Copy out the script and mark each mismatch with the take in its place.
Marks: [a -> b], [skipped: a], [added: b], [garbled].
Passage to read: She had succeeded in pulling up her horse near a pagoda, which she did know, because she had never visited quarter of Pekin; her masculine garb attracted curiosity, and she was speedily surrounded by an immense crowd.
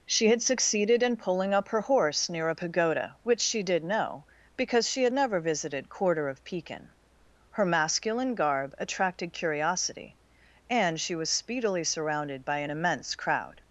She had succeeded in pulling up her horse near a pagoda, which she did know, because she had never visited quarter of Pekin; her masculine garb attracted curiosity, and she was speedily surrounded by an immense crowd.